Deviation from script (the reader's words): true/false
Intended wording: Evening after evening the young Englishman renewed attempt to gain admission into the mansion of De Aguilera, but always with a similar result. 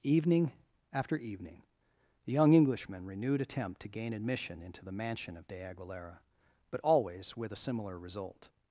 false